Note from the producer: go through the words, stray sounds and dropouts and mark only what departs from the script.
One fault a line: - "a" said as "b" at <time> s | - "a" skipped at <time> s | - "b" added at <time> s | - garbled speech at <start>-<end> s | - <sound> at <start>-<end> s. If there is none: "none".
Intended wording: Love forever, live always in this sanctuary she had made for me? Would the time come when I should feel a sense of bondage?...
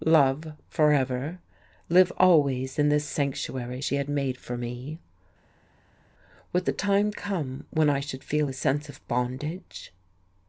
none